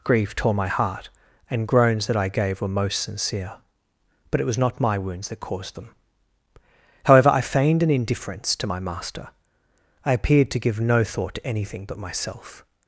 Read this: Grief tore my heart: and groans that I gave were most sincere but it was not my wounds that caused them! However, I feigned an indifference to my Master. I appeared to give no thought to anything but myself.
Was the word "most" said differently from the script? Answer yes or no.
no